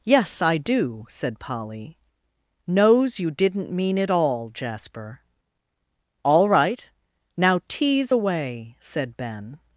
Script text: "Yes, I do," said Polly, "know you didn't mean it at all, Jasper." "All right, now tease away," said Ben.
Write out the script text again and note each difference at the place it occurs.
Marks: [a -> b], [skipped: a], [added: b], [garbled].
"Yes, I do," said Polly, ["know -> knows] you didn't mean it [skipped: at] all, Jasper." "All right, now tease away," said Ben.